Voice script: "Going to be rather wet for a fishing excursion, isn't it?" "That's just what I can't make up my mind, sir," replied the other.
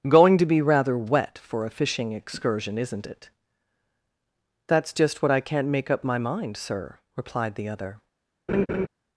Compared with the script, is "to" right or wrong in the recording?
right